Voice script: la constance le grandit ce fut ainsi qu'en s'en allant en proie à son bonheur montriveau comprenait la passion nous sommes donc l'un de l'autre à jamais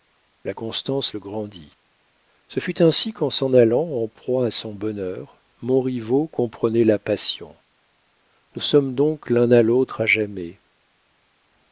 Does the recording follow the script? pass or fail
fail